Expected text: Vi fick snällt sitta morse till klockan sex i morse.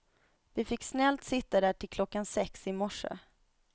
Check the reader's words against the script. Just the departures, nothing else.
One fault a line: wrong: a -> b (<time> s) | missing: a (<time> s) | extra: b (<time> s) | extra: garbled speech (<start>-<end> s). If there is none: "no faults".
wrong: morse -> där (1.6 s)